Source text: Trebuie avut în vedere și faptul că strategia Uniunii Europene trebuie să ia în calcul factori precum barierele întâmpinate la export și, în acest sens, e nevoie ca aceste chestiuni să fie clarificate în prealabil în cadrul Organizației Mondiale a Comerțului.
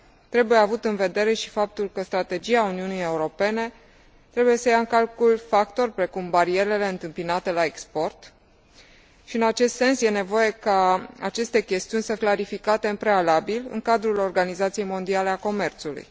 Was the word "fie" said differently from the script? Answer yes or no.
yes